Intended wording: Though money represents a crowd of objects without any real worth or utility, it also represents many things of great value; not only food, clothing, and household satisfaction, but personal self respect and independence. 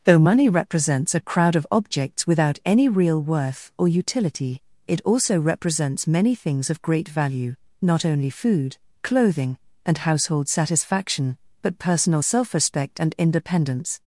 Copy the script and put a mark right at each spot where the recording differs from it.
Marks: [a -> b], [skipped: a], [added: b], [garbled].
Though money represents a crowd of objects without any real worth or utility, it also represents many things of great value; not only food, clothing, and household satisfaction, but personal self respect and independence.